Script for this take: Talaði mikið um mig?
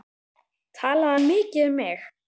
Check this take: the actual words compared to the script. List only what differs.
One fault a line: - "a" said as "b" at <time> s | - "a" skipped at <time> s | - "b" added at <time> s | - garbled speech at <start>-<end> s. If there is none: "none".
- "hann" added at 1.1 s